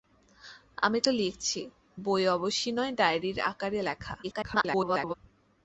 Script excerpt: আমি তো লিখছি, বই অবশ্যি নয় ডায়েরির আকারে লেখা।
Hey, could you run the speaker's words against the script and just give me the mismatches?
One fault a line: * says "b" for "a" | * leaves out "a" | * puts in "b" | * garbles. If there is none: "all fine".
* garbles